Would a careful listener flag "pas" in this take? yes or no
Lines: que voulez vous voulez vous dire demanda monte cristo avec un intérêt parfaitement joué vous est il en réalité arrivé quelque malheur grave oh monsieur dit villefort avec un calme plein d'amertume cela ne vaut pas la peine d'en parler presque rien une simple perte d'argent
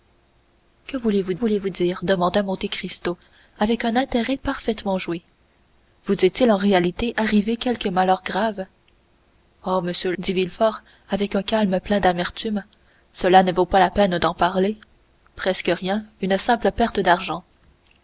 no